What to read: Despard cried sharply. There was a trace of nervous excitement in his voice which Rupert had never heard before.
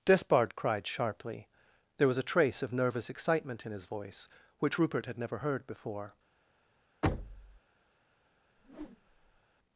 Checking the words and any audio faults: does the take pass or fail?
fail